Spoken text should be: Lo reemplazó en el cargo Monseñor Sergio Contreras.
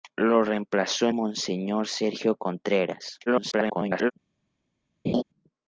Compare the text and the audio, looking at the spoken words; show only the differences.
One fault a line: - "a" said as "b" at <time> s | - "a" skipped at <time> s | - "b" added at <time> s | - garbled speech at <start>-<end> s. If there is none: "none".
- "en el cargo" skipped at 1.1 s
- garbled speech at 3.3-4.1 s